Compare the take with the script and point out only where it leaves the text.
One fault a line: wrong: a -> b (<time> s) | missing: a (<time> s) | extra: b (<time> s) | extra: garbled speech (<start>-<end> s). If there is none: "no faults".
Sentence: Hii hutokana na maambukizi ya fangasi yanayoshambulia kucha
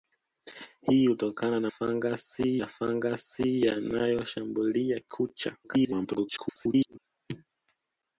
wrong: maambukizi -> fangasi (1.7 s)
extra: garbled speech (5.6-7.0 s)